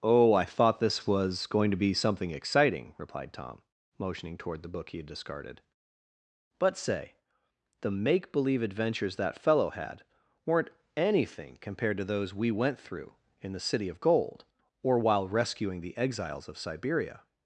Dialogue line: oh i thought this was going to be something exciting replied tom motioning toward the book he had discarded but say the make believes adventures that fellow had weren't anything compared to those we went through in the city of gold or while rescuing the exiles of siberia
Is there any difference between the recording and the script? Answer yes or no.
yes